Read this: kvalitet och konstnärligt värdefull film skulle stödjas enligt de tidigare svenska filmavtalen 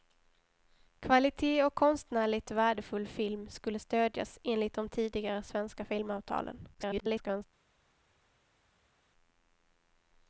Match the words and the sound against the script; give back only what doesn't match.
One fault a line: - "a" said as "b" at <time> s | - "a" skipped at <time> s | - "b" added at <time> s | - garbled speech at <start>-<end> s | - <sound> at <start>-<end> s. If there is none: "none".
- garbled speech at 6.7-7.5 s